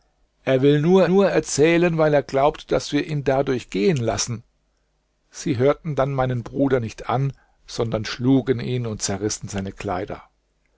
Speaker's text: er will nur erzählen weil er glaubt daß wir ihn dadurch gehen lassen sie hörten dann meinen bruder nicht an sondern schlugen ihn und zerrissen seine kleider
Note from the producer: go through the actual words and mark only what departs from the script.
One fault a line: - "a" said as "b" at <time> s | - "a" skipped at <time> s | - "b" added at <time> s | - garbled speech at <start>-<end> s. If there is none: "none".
- "nur" added at 1.0 s